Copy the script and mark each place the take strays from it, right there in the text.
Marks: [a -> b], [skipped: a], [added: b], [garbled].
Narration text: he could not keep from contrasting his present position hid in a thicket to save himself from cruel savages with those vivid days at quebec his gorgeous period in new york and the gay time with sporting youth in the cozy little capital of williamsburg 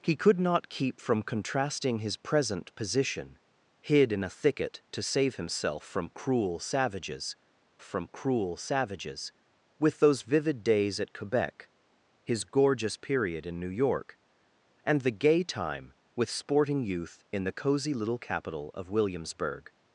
he could not keep from contrasting his present position hid in a thicket to save himself from cruel savages [added: from cruel savages] with those vivid days at quebec his gorgeous period in new york and the gay time with sporting youth in the cozy little capital of williamsburg